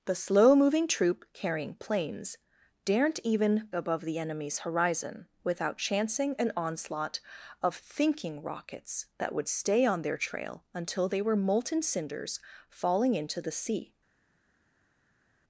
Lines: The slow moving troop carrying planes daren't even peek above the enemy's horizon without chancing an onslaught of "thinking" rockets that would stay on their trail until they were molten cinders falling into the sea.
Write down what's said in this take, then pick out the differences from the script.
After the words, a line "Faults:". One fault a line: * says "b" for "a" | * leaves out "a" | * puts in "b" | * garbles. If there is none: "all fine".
The slow moving troop carrying planes daren't even above the enemy's horizon without chancing an onslaught of "thinking" rockets that would stay on their trail until they were molten cinders falling into the sea.
Faults:
* leaves out "peek"